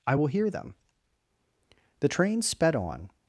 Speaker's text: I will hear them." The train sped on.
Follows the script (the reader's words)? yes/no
yes